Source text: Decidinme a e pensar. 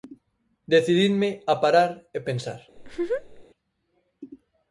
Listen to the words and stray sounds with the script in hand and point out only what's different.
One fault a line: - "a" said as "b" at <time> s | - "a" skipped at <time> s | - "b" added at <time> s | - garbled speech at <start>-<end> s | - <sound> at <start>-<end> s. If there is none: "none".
- "parar" added at 1.6 s
- laugh at 2.8-3.5 s